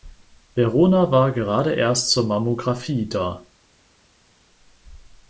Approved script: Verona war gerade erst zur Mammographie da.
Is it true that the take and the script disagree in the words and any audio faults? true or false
false